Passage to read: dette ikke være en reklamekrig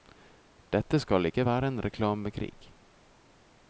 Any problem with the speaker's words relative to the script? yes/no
yes